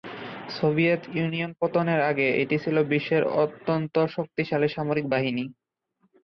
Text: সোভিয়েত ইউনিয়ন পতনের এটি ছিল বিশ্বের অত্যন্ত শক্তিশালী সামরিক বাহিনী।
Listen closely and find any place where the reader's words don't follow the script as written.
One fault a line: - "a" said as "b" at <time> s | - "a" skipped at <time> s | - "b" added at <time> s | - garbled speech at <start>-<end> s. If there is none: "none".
- "আগে" added at 2.1 s